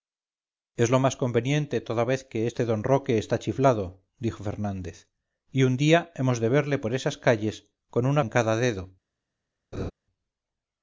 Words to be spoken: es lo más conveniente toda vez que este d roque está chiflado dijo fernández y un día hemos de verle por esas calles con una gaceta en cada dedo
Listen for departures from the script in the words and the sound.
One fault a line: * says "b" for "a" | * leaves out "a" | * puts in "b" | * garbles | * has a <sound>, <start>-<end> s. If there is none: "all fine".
* leaves out "gaceta"
* has a laugh, 9.7-9.9 s